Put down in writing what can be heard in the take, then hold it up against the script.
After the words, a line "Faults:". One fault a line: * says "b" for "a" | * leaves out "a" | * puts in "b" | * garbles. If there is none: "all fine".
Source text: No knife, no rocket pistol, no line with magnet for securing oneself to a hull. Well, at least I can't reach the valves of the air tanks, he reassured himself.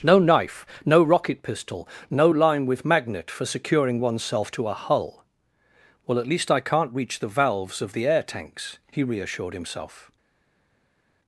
No knife, no rocket pistol, no line with magnet for securing oneself to a hull. Well, at least I can't reach the valves of the air tanks, he reassured himself.
Faults:
all fine